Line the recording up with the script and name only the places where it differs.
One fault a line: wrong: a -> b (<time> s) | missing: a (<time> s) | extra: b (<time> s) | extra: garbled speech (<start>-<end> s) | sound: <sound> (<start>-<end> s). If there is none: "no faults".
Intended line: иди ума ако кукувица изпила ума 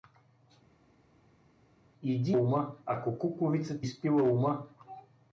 no faults